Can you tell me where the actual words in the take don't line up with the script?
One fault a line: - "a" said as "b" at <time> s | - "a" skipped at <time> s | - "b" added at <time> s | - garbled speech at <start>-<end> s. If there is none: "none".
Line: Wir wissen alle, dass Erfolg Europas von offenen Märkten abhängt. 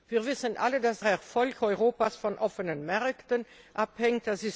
none